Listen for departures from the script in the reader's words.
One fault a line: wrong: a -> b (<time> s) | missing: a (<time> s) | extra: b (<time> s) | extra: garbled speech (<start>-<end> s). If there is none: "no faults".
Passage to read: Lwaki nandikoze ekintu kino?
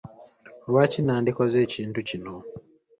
no faults